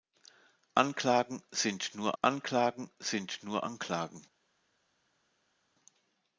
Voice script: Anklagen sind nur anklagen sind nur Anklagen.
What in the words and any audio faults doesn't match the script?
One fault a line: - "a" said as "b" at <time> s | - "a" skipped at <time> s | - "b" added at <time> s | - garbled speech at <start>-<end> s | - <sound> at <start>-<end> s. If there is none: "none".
none